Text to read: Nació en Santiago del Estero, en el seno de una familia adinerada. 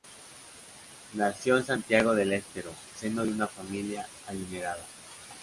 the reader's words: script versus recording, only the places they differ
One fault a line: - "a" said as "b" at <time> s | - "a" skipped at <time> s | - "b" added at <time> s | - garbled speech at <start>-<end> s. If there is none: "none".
- "en el" skipped at 2.7 s